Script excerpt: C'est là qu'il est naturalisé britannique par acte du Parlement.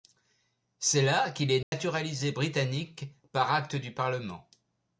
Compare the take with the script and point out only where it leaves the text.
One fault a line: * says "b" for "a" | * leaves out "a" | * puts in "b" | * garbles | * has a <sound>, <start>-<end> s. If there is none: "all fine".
* has a dropout, 1.6-1.7 s